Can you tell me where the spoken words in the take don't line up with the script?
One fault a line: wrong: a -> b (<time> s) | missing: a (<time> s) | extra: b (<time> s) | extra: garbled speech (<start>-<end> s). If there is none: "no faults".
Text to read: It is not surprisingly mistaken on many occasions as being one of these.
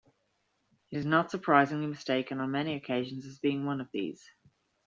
no faults